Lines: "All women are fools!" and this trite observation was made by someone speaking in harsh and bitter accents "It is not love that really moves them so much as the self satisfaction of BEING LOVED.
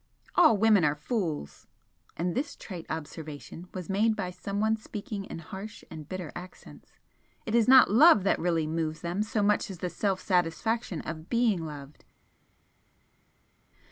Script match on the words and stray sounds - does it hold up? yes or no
yes